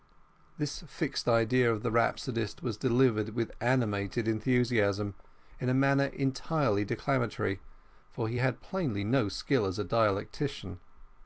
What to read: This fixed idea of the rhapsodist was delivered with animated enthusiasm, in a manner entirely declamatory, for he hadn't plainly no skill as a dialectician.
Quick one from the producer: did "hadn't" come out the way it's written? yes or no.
no